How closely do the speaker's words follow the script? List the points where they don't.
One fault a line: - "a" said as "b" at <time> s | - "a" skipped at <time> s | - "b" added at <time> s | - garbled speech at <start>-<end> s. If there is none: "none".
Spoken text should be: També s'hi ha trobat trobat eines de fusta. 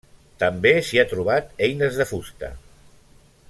- "trobat" skipped at 1.5 s